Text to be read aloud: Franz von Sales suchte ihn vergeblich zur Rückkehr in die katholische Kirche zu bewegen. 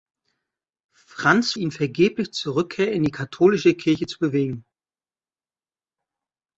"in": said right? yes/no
yes